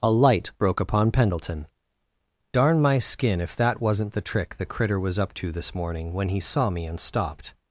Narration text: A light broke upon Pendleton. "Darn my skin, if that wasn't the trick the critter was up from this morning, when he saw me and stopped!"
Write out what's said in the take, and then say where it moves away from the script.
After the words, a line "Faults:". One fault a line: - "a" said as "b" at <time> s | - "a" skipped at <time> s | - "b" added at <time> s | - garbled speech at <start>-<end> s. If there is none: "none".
A light broke upon Pendleton. "Darn my skin, if that wasn't the trick the critter was up to this morning, when he saw me and stopped!"
Faults:
- "from" said as "to" at 5.3 s